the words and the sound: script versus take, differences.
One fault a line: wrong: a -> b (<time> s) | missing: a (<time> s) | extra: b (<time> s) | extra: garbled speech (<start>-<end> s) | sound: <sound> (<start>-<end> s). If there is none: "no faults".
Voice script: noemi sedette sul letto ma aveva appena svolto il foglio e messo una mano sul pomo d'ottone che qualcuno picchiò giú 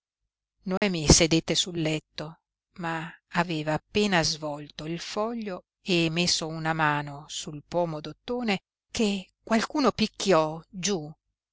sound: dropout (0.8-0.8 s)